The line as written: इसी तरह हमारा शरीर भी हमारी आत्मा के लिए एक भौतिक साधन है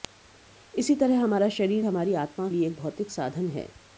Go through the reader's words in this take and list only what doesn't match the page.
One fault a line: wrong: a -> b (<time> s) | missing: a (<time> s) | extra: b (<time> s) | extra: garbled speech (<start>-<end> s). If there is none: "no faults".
missing: भी (1.8 s)
missing: के (2.5 s)